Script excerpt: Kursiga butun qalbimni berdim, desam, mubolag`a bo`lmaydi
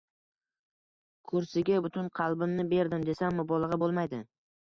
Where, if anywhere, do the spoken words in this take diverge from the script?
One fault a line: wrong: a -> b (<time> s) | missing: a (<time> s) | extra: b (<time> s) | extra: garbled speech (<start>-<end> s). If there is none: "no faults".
no faults